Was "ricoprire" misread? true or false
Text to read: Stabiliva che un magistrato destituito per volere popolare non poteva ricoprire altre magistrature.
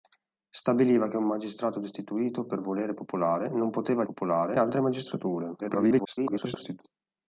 true